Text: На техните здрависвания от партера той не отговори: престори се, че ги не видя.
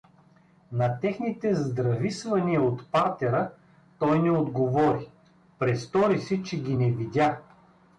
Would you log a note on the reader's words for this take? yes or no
no